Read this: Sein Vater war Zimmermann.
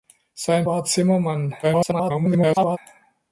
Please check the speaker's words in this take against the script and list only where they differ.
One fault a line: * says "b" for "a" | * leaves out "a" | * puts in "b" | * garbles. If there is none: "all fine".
* leaves out "Vater"
* garbles